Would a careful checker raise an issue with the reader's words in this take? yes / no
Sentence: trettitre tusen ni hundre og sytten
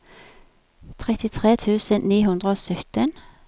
no